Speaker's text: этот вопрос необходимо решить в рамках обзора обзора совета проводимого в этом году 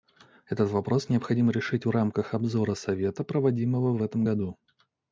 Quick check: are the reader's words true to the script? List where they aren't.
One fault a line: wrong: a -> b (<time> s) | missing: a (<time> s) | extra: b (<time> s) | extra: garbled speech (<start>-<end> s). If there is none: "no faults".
missing: обзора (2.7 s)